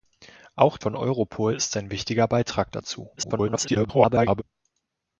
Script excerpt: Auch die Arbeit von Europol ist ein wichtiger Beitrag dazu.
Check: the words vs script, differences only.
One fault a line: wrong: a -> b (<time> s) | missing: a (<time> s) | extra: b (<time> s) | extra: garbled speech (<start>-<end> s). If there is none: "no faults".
missing: die Arbeit (0.8 s)
extra: garbled speech (3.2-4.4 s)